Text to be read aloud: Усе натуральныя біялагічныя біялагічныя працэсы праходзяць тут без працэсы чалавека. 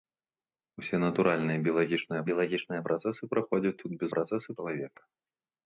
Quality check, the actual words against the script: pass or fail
pass